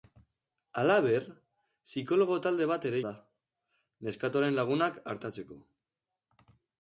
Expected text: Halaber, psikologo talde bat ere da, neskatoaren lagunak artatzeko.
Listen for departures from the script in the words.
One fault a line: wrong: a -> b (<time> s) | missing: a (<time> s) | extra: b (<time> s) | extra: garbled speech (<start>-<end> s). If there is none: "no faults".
no faults